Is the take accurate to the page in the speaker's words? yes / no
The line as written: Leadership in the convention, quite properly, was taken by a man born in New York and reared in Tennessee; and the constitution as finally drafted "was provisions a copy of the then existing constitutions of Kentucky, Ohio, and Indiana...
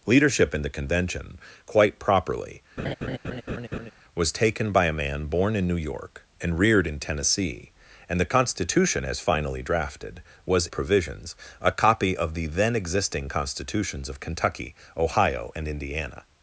yes